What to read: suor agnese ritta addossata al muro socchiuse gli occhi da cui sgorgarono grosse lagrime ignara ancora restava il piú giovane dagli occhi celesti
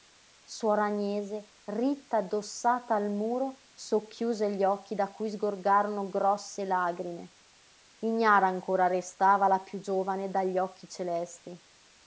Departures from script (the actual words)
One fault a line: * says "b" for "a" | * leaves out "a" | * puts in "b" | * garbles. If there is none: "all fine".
* says "la" for "il"